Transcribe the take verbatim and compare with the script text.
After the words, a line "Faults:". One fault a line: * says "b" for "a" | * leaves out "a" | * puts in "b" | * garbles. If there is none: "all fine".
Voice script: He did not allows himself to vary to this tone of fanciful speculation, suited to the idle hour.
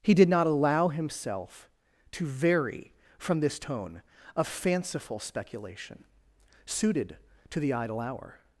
He did not allow himself to vary from this tone of fanciful speculation, suited to the idle hour.
Faults:
* says "allow" for "allows"
* says "from" for "to"